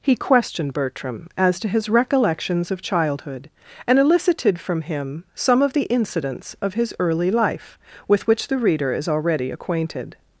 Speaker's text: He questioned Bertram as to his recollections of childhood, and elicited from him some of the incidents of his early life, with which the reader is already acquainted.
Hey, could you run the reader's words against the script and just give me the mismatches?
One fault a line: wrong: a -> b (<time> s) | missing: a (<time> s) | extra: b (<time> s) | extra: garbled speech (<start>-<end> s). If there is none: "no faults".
no faults